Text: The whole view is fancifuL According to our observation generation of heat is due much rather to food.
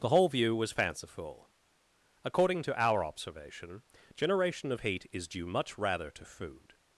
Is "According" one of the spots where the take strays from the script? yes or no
no